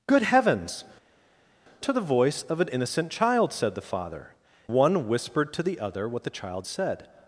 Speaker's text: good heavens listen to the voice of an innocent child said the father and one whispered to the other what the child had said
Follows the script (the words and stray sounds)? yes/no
no